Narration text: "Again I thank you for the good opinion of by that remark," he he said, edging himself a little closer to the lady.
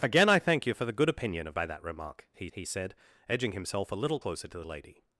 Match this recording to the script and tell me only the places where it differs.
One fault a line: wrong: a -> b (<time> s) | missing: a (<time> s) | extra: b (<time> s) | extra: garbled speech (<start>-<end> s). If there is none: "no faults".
no faults